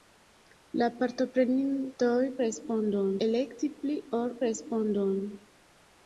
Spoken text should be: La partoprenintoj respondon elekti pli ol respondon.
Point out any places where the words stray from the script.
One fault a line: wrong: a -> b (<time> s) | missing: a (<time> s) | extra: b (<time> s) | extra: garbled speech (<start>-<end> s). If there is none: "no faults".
no faults